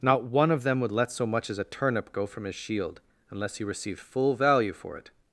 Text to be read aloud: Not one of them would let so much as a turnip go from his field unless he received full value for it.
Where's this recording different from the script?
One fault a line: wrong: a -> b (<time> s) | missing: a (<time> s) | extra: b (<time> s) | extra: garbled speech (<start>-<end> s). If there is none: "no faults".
wrong: field -> shield (2.5 s)